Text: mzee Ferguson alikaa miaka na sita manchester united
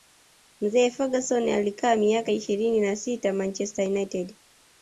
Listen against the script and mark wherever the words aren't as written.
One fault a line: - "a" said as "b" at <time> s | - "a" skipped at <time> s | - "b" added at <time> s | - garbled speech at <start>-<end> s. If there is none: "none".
- "ishirini" added at 2.3 s